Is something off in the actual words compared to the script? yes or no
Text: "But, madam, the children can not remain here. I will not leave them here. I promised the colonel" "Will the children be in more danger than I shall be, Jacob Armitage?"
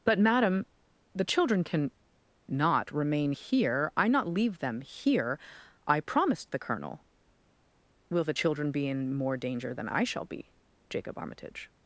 yes